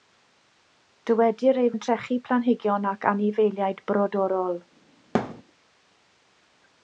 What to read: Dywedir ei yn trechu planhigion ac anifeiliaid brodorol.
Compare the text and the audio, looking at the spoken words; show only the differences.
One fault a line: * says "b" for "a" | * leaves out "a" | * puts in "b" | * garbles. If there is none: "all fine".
all fine